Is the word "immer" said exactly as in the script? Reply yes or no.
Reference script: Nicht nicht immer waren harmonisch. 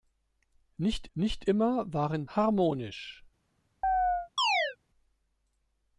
yes